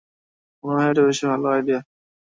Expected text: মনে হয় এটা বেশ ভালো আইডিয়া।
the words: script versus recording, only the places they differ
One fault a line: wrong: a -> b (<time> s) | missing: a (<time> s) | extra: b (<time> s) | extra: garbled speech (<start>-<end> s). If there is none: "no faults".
no faults